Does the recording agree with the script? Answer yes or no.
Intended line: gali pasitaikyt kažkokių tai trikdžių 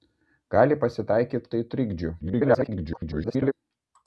no